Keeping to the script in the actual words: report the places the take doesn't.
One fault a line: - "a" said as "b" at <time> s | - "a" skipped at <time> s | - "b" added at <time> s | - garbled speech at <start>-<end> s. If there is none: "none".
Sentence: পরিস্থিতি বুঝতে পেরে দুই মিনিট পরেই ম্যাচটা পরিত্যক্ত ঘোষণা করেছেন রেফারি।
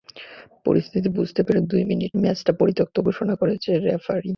- "পরেই" skipped at 2.1 s